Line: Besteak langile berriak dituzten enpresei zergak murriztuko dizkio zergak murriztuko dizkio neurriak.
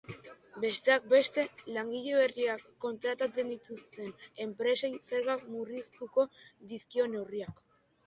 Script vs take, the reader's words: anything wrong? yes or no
yes